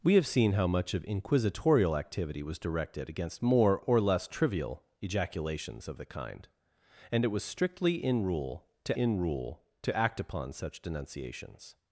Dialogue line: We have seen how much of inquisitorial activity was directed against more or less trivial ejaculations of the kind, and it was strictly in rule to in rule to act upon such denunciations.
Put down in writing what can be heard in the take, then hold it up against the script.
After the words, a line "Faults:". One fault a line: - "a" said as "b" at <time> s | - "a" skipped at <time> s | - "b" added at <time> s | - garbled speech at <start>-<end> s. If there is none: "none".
We have seen how much of inquisitorial activity was directed against more or less trivial ejaculations of the kind, and it was strictly in rule to in rule to act upon such denunciations.
Faults:
none